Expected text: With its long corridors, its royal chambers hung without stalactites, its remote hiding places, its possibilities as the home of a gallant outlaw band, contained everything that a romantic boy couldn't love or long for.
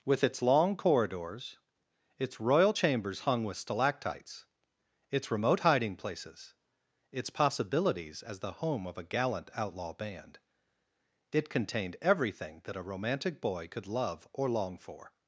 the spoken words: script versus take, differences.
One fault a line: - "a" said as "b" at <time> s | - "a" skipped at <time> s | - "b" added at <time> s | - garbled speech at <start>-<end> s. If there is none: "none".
- "without" said as "with" at 3.4 s
- "it" added at 11.3 s
- "couldn't" said as "could" at 13.7 s